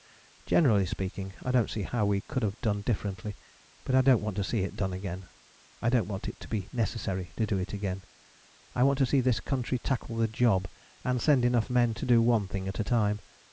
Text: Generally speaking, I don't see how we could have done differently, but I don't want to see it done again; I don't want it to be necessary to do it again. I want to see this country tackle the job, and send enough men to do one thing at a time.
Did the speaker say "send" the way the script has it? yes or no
yes